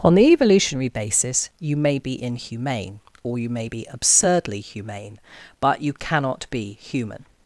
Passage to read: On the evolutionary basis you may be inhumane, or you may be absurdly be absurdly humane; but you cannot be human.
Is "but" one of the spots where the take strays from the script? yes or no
no